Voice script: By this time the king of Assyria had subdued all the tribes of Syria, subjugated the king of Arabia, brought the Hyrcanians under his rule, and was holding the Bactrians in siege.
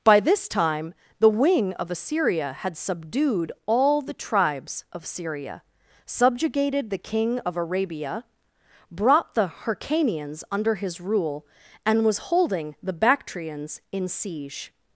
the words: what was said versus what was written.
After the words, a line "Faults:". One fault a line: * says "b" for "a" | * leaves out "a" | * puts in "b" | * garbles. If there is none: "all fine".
By this time the wing of Assyria had subdued all the tribes of Syria, subjugated the king of Arabia, brought the Hyrcanians under his rule, and was holding the Bactrians in siege.
Faults:
* says "wing" for "king"